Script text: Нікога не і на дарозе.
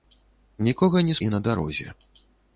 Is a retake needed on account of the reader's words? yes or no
no